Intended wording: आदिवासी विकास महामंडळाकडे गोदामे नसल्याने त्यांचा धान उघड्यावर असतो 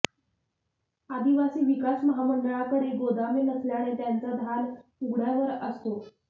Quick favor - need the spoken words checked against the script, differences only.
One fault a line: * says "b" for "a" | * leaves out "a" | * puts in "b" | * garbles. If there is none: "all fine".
all fine